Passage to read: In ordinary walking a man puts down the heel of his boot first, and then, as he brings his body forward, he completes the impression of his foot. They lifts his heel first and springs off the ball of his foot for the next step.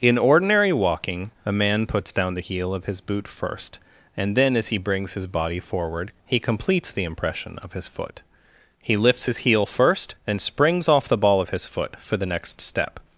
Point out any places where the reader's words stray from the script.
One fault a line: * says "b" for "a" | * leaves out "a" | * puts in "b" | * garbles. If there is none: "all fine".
* says "He" for "They"